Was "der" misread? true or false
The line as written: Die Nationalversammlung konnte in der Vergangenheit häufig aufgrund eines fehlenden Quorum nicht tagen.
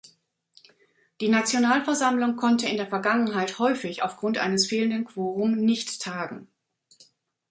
false